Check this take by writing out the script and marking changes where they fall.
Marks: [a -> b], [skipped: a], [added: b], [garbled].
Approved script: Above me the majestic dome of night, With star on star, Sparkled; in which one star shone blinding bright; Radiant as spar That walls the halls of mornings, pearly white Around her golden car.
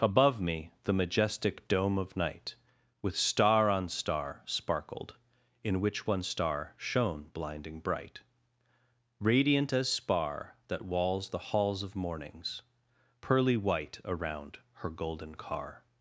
Above me the majestic dome of night, With star on star, Sparkled; in which one star shone blinding bright; Radiant as spar That walls the halls of mornings, pearly white Around her golden car.